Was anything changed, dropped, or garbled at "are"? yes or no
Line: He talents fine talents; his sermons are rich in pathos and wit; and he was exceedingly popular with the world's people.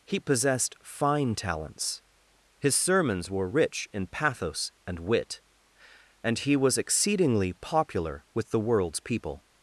yes